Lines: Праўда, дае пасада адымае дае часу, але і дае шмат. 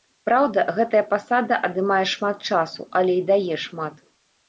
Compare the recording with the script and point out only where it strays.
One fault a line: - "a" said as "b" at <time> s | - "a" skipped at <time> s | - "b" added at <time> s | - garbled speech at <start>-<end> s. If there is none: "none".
- "дае" said as "гэтая" at 0.8 s
- "дае" said as "шмат" at 2.1 s